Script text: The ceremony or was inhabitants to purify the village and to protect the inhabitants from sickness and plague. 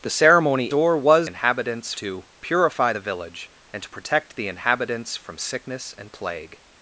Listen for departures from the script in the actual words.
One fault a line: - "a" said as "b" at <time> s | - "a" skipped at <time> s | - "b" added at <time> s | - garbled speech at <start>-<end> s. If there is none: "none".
none